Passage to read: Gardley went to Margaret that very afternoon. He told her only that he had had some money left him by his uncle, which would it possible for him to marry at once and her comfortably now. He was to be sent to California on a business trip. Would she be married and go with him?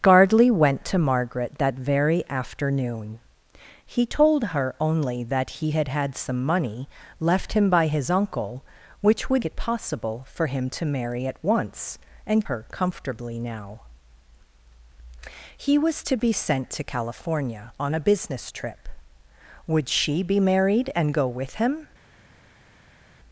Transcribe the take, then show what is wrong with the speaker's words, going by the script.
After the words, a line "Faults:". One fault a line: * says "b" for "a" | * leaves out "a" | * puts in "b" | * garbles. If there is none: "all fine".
Gardley went to Margaret that very afternoon. He told her only that he had had some money left him by his uncle, which would it possible for him to marry at once and her comfortably now. He was to be sent to California on a business trip. Would she be married and go with him?
Faults:
all fine